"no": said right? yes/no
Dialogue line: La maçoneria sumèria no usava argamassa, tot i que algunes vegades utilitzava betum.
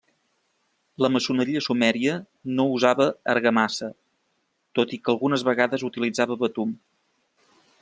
yes